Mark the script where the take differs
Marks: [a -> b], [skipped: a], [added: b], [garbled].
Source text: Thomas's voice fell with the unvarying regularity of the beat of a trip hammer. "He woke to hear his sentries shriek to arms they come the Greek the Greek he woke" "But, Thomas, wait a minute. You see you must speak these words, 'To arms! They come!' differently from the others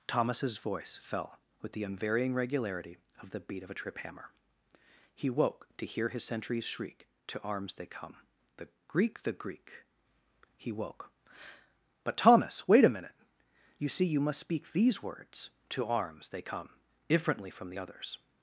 Thomas's voice fell with the unvarying regularity of the beat of a trip hammer. "He woke to hear his sentries shriek to arms they come the Greek the Greek he woke" "But, Thomas, wait a minute. You see you must speak these words, 'To arms! They come!' differently from the others